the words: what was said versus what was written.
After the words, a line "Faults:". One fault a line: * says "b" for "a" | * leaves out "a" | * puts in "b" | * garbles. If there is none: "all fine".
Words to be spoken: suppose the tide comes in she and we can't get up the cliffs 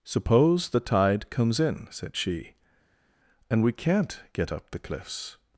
suppose the tide comes in said she and we can't get up the cliffs
Faults:
* puts in "said"